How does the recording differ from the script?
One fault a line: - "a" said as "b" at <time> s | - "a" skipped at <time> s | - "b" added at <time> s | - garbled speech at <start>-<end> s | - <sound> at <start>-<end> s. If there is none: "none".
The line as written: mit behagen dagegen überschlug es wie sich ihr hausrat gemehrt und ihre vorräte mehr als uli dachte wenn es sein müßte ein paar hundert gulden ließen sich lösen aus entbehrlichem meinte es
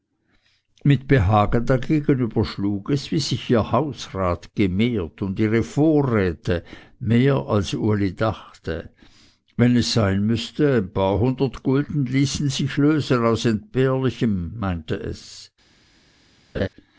- laugh at 16.5-16.7 s